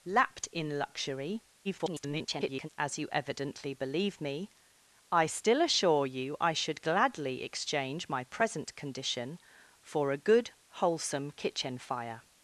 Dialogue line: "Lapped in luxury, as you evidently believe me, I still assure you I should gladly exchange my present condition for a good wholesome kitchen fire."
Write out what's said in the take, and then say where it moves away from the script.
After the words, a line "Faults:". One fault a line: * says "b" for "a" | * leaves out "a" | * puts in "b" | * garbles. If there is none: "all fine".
"Lapped in luxury, [garbled] as you evidently believe me, I still assure you I should gladly exchange my present condition for a good wholesome kitchen fire."
Faults:
* garbles